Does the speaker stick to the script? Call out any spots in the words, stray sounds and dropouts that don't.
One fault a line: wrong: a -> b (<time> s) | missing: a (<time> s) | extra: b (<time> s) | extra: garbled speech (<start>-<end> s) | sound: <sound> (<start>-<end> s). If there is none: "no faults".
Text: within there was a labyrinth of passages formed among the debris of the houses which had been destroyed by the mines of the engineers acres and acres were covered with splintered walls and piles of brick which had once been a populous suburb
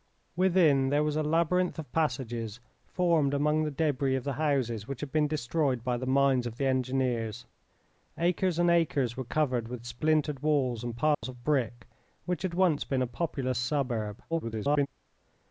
sound: dropout (11.1-11.2 s)
extra: garbled speech (14.3-14.9 s)